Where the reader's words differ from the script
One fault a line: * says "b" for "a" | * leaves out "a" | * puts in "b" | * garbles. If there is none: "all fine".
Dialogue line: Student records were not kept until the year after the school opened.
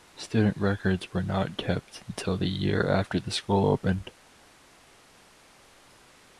all fine